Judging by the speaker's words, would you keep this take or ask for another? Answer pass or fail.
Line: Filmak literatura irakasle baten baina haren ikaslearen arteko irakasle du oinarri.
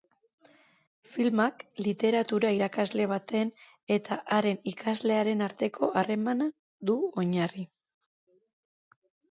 fail